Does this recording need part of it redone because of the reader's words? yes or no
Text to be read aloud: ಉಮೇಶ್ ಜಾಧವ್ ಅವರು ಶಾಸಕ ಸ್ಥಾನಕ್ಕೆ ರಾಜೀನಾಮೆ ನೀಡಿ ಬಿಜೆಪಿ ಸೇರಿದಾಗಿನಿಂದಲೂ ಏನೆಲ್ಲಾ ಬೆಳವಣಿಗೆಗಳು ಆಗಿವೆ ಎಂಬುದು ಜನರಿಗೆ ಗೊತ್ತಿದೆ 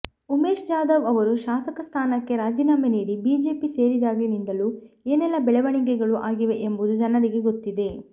no